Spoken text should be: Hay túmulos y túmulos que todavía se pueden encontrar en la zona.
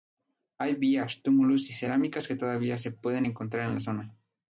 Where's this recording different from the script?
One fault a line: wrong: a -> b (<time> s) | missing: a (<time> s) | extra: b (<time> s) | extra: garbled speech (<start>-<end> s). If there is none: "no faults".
extra: vías (0.8 s)
wrong: túmulos -> cerámicas (1.7 s)